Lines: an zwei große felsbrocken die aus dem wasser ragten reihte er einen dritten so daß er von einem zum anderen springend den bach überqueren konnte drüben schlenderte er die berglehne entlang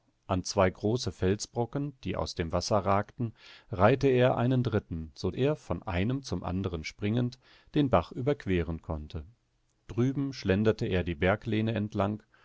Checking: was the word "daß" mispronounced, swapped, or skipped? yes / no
yes